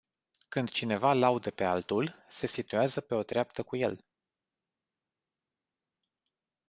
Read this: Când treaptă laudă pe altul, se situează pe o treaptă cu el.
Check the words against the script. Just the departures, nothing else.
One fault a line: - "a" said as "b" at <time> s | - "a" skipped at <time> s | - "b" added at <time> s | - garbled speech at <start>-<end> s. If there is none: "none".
- "treaptă" said as "cineva" at 0.7 s